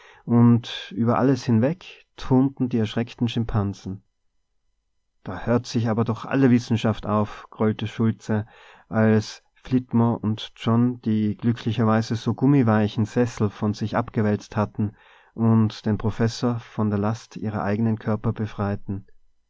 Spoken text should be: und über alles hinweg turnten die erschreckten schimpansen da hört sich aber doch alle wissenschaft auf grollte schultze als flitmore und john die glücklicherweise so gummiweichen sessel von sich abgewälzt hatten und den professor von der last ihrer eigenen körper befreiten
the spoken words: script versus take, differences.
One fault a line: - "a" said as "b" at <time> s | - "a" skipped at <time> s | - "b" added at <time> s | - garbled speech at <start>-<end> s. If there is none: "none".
none